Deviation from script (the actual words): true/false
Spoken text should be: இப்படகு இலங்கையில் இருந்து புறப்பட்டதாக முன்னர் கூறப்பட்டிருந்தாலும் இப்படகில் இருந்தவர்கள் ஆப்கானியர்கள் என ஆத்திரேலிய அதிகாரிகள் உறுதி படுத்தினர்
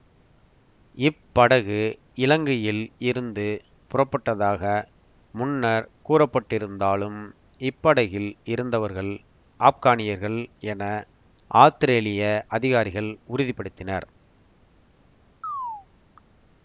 false